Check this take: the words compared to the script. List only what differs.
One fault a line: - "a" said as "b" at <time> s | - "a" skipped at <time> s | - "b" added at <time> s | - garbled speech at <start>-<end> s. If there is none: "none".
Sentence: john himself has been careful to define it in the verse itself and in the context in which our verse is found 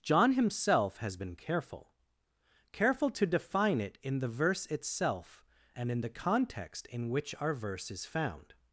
- "careful" added at 2.7 s